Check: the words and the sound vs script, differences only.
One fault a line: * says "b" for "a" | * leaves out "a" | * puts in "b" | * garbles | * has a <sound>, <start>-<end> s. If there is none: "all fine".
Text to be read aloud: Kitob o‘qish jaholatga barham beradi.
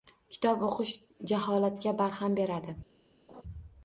* has a laugh, 3.3-3.4 s